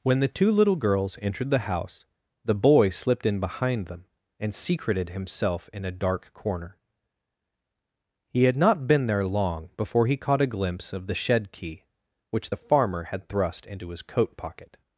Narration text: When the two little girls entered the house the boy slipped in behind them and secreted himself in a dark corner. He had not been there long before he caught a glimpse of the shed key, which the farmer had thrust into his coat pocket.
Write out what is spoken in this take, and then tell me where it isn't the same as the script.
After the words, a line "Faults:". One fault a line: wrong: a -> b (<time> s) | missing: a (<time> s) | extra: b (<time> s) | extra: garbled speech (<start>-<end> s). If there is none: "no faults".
When the two little girls entered the house the boy slipped in behind them and secreted himself in a dark corner. He had not been there long before he caught a glimpse of the shed key, which the farmer had thrust into his coat pocket.
Faults:
no faults